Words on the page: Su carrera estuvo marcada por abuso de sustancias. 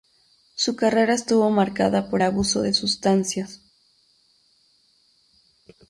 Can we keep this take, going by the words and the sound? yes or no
yes